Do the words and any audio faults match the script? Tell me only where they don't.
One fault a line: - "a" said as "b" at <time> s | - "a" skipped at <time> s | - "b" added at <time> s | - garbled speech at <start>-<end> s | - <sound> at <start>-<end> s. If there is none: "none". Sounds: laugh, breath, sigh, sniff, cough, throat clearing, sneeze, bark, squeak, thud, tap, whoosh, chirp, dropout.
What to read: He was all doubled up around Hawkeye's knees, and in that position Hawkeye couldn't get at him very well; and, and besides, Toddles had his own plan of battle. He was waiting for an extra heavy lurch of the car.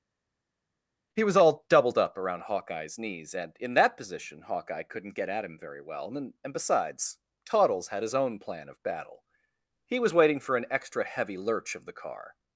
none